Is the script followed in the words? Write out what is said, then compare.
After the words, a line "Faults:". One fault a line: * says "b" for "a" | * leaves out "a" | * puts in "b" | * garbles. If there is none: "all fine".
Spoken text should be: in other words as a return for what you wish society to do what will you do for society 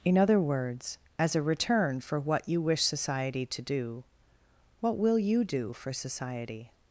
in other words as a return for what you wish society to do what will you do for society
Faults:
all fine